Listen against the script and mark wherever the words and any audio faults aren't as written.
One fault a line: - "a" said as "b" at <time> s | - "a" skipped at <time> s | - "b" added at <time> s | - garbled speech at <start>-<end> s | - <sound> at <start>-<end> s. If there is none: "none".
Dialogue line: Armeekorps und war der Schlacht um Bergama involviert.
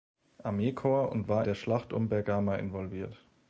none